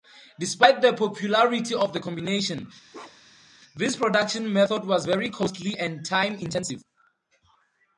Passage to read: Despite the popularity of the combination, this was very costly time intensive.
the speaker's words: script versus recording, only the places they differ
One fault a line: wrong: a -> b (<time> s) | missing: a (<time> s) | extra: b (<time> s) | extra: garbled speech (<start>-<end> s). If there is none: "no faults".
extra: production method (3.9 s)
extra: and (5.8 s)